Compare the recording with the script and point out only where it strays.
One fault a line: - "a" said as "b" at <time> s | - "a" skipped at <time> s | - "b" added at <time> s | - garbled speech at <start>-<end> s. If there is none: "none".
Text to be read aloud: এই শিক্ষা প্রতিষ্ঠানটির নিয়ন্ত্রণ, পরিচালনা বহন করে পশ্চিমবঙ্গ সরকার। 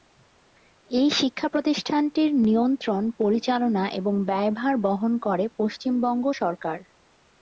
- "এবং ব্যয়ভার" added at 3.9 s